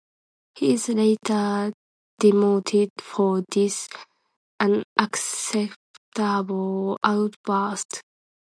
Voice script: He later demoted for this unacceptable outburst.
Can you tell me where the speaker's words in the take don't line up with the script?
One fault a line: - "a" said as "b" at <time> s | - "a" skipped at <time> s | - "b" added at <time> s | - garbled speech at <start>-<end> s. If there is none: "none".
- "is" added at 0.7 s